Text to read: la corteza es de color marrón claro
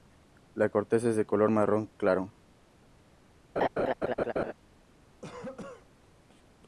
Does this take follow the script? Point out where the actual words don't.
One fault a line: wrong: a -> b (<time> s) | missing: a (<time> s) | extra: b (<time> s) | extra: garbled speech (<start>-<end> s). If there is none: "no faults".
no faults